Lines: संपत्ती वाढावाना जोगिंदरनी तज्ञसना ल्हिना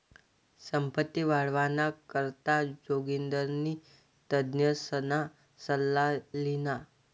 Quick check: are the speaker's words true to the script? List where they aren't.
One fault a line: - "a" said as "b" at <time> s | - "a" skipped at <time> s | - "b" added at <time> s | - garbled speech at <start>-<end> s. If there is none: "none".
- "करता" added at 2.1 s
- "सल्ला" added at 5.6 s